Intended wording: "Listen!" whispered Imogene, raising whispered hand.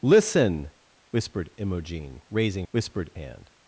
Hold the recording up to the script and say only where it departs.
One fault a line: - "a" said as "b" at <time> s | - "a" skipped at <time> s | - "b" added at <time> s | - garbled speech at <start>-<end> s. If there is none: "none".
none